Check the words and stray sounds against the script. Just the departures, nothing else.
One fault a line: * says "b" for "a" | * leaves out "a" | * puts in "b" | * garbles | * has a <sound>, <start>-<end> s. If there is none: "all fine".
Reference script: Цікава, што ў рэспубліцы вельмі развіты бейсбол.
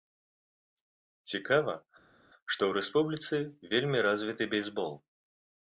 all fine